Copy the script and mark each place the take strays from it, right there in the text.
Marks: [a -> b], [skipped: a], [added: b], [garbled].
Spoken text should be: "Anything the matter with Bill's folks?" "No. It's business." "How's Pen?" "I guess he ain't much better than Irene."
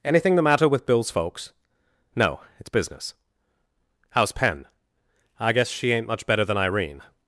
"Anything the matter with Bill's folks?" "No. It's business." "How's Pen?" "I guess [he -> she] ain't much better than Irene."